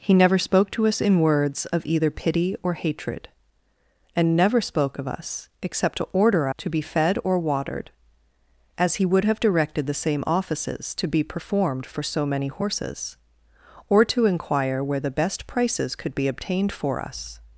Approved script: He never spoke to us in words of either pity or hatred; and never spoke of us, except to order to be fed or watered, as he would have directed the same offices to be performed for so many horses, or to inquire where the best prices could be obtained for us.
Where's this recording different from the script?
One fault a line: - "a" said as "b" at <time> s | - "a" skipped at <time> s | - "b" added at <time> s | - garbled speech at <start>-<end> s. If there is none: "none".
none